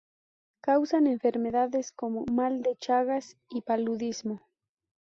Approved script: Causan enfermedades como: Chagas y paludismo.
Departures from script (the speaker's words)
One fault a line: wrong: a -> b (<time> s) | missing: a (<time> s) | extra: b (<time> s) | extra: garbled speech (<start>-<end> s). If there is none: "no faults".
extra: mal de (2.3 s)